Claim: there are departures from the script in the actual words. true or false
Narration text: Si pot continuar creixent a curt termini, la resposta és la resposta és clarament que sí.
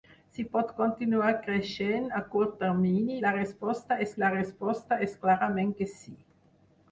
false